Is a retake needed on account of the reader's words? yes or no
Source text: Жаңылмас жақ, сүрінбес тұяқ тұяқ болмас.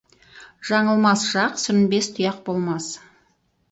yes